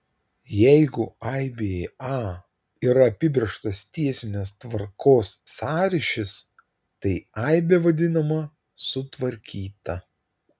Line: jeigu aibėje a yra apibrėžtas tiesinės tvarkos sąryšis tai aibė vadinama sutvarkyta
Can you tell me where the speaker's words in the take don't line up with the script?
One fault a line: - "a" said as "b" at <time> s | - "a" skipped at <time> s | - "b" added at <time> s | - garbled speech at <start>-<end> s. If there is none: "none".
none